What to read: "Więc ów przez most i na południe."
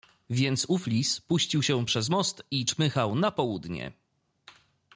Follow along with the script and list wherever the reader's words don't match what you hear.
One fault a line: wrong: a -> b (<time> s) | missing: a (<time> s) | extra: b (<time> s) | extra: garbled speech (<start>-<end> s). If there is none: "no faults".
extra: lis puścił się (0.9 s)
extra: czmychał (2.6 s)